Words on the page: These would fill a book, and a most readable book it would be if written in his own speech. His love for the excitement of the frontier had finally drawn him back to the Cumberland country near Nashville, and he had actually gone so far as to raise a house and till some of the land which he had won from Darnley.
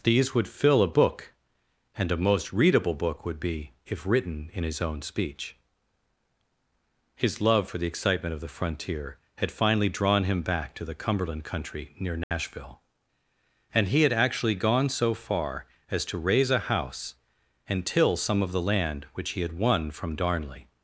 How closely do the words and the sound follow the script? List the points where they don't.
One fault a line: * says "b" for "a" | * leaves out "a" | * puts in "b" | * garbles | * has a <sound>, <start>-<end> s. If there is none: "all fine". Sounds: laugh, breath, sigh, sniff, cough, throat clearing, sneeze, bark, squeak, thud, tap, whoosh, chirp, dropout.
* leaves out "it"
* has a dropout, 12.2-12.3 s